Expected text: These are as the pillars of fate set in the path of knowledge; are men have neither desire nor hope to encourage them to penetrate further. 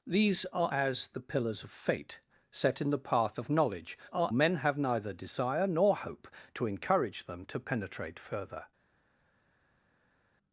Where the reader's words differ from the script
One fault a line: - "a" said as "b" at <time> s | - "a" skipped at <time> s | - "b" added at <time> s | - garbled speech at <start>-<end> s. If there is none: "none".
none